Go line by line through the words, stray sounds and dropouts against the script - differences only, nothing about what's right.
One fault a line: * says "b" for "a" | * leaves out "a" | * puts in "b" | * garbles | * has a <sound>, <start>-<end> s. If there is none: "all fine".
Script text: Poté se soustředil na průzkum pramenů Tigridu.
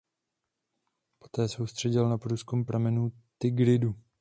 * leaves out "se"